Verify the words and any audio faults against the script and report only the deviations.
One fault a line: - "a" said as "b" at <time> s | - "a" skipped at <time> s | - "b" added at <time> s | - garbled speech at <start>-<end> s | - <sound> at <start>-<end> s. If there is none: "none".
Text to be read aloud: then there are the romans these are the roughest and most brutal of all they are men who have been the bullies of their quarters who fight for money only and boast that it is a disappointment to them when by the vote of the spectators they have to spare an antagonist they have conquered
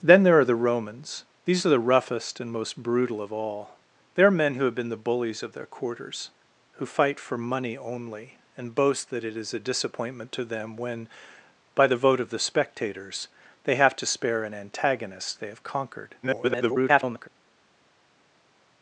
- garbled speech at 16.2-17.3 s